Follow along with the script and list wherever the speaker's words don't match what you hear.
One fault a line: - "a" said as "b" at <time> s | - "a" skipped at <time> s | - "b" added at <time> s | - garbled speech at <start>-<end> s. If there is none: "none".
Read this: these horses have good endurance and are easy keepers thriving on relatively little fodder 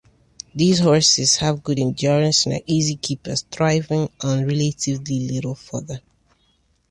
none